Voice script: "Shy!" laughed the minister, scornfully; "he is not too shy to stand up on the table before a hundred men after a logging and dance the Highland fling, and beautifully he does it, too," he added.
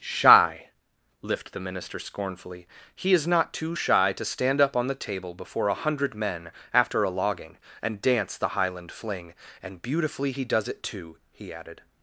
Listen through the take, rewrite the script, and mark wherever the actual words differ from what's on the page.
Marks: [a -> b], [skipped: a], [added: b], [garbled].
"Shy!" [laughed -> lift] the minister, scornfully; "he is not too shy to stand up on the table before a hundred men after a logging and dance the Highland fling, and beautifully he does it, too," he added.